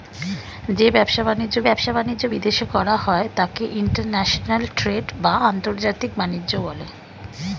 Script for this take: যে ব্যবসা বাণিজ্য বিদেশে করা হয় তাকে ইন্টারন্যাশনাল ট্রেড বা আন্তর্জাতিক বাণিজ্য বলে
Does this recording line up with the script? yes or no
no